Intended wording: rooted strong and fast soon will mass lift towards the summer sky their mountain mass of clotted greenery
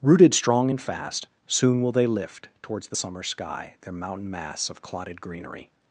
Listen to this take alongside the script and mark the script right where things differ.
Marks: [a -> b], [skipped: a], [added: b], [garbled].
rooted strong and fast soon will [mass -> they] lift towards the summer sky their mountain mass of clotted greenery